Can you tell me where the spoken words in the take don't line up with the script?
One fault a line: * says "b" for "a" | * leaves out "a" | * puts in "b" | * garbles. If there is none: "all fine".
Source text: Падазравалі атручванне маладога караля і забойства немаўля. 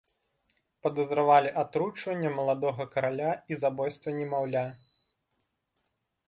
all fine